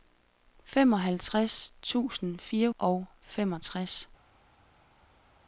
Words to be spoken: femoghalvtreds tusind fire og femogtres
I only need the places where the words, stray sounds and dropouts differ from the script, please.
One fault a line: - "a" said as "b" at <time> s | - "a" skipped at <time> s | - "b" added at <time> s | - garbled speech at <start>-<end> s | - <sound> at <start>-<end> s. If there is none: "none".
none